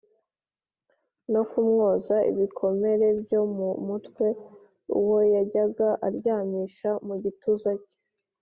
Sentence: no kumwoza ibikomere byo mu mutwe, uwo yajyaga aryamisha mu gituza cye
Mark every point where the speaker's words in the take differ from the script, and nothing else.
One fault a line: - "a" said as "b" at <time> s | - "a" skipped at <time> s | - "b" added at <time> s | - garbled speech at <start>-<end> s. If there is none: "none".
none